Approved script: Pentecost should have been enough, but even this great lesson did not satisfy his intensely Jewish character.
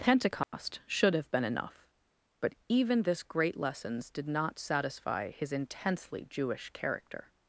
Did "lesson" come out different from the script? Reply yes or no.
yes